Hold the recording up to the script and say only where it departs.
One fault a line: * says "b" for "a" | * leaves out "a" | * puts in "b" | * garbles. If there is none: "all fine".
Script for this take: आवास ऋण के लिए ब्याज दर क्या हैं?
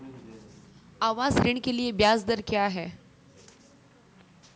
all fine